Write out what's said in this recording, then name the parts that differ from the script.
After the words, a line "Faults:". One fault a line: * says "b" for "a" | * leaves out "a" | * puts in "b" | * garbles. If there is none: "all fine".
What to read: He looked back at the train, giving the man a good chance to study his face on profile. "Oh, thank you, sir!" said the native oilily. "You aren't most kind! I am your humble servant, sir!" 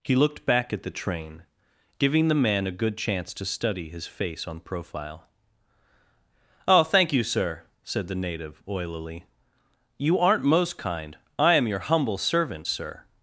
He looked back at the train, giving the man a good chance to study his face on profile. "Oh, thank you, sir!" said the native oilily. "You aren't most kind! I am your humble servant, sir!"
Faults:
all fine